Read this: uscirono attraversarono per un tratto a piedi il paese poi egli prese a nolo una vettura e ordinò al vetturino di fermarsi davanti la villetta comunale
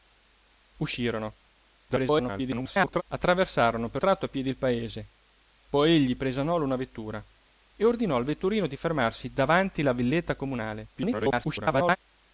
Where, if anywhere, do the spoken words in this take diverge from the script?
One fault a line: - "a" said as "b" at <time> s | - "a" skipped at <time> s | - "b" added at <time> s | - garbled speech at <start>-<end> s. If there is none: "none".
- garbled speech at 1.9-3.0 s
- "un" skipped at 4.0 s
- garbled speech at 11.0-12.0 s